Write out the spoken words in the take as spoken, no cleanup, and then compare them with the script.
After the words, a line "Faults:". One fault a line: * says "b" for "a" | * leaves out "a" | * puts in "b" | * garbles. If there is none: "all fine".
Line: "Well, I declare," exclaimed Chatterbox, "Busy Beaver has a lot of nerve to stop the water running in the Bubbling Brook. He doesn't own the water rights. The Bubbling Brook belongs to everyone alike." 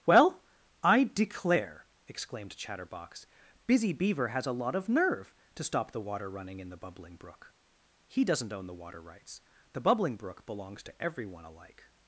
"Well, I declare," exclaimed Chatterbox, "Busy Beaver has a lot of nerve to stop the water running in the Bubbling Brook. He doesn't own the water rights. The Bubbling Brook belongs to everyone alike."
Faults:
all fine